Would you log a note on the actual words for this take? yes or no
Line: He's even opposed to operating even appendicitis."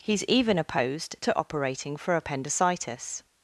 yes